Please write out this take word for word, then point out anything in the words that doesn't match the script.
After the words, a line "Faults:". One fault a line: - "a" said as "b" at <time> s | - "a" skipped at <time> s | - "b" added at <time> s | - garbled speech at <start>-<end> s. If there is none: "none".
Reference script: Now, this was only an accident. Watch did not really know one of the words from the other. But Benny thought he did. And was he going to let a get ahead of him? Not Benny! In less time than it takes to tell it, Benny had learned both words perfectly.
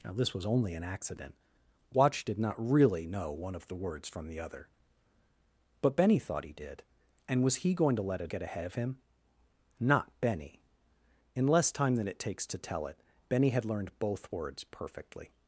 Now, this was only an accident. Watch did not really know one of the words from the other. But Benny thought he did. And was he going to let a get ahead of him? Not Benny! In less time than it takes to tell it, Benny had learned both words perfectly.
Faults:
none